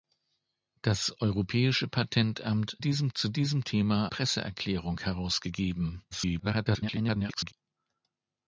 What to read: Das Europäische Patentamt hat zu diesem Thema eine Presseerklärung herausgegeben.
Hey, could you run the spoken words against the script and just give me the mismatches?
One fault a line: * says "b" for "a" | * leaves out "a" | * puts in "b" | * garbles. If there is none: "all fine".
* says "diesem" for "hat"
* leaves out "eine"
* garbles